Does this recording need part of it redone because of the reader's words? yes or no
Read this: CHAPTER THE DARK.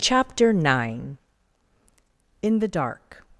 yes